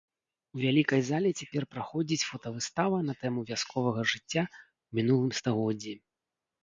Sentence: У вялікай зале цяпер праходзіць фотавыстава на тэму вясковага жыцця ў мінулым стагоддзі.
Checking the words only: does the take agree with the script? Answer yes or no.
yes